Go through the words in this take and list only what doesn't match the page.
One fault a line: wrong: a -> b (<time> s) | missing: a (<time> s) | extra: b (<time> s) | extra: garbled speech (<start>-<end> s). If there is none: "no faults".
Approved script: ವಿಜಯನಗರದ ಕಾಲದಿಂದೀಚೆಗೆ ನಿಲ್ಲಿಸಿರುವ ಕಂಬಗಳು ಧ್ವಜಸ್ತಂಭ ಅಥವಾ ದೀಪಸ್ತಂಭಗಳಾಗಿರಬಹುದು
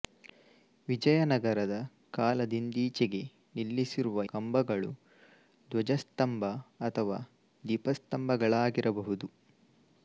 no faults